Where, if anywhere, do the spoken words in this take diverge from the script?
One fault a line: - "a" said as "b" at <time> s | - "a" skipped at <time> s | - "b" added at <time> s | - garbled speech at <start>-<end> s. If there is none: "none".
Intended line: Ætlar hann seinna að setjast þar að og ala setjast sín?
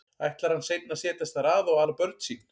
- "setjast" said as "börn" at 2.0 s